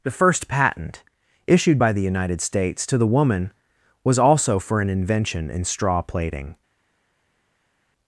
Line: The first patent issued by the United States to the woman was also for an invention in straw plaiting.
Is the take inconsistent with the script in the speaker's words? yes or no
no